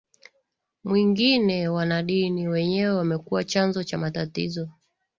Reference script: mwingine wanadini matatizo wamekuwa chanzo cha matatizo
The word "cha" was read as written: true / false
true